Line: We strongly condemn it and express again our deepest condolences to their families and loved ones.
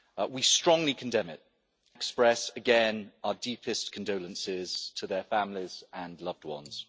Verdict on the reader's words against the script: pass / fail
fail